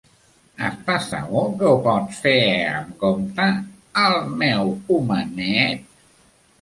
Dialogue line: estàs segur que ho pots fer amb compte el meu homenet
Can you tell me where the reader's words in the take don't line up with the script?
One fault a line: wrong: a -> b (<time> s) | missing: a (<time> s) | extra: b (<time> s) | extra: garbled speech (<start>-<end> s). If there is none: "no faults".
no faults